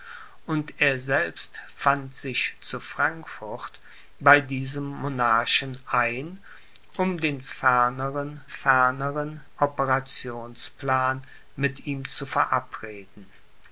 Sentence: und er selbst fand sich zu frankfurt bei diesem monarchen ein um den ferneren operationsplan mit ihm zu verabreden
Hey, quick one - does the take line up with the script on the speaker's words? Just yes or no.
no